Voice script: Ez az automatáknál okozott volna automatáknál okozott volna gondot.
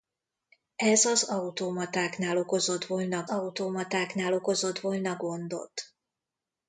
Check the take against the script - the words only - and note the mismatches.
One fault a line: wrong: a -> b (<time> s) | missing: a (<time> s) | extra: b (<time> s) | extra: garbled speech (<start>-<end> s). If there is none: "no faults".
no faults